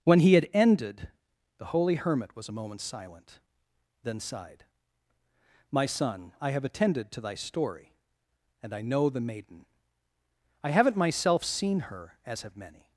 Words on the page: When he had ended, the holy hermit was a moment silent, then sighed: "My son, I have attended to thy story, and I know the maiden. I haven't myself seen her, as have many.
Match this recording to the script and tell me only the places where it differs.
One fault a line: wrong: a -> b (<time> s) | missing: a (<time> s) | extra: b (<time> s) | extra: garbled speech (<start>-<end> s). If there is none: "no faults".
no faults